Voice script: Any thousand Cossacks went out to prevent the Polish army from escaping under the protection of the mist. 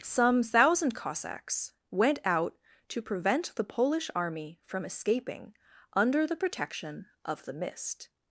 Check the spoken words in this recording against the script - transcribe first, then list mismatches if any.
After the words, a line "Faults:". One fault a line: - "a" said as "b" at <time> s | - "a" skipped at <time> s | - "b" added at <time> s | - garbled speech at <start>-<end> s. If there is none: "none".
Some thousand Cossacks went out to prevent the Polish army from escaping under the protection of the mist.
Faults:
- "Any" said as "Some" at 0.0 s